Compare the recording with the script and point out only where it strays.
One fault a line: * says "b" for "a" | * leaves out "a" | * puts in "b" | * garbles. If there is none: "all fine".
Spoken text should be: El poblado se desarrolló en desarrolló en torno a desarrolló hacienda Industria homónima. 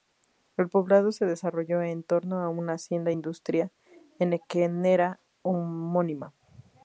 * leaves out "desarrolló en"
* says "una" for "desarrolló"
* puts in "henequenera"